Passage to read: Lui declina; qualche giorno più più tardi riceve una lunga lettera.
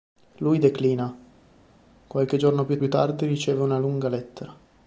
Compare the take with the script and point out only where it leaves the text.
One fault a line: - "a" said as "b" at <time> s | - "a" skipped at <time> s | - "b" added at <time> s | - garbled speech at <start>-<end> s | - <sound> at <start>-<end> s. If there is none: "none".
none